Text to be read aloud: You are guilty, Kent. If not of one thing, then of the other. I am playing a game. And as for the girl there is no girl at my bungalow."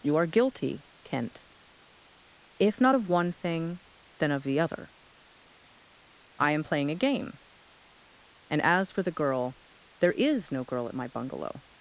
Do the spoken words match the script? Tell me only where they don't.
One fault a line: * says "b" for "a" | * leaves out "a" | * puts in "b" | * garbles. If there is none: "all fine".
all fine